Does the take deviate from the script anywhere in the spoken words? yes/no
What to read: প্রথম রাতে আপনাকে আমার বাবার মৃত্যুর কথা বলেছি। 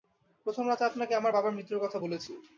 no